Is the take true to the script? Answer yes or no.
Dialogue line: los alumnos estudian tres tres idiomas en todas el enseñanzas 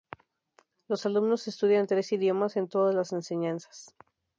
no